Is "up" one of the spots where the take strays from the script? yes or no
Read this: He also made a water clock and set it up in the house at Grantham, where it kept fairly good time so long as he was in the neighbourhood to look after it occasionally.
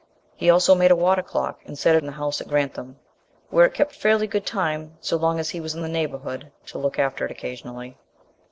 yes